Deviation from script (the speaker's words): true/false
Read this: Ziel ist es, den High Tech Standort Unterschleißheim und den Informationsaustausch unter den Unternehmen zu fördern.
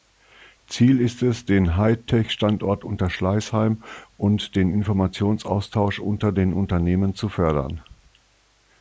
false